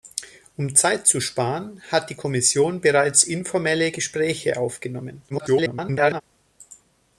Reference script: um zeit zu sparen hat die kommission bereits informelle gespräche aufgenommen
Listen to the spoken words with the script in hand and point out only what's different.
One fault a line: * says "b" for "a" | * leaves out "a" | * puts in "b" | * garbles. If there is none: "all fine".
* garbles